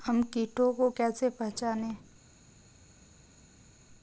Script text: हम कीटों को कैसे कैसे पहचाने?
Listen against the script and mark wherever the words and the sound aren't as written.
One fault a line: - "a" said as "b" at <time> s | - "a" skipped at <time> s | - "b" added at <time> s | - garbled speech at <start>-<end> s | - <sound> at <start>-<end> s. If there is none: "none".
- "कैसे" skipped at 1.3 s